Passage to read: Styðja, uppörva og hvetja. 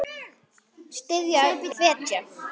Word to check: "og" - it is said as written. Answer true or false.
false